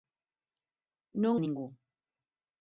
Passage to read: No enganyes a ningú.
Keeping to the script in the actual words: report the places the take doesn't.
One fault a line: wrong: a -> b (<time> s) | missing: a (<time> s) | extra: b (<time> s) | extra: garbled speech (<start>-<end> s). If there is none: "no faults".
missing: enganyes (1.3 s)